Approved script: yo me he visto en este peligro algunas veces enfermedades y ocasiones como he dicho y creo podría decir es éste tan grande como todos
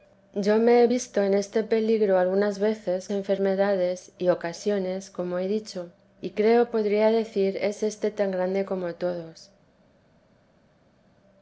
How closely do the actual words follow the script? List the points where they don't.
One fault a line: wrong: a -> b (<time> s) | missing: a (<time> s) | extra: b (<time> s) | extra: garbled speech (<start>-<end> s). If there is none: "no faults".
no faults